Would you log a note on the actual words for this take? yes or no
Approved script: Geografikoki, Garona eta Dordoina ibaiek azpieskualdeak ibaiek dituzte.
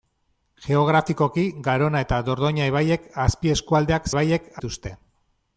no